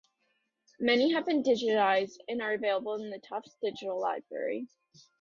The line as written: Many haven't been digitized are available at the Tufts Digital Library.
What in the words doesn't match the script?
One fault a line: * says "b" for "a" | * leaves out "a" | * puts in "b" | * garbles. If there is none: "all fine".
* says "have" for "haven't"
* puts in "and"
* says "in" for "at"